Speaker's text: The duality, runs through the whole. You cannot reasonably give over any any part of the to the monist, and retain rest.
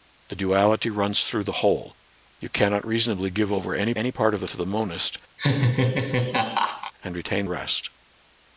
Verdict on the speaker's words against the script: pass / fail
pass